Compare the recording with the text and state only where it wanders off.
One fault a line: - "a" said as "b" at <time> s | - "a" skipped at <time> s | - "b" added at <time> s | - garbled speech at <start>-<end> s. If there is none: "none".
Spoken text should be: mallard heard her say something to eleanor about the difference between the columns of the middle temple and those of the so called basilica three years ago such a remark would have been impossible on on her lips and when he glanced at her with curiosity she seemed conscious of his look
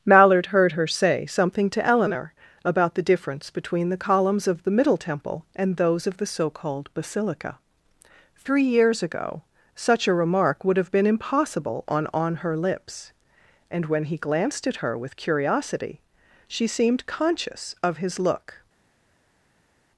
none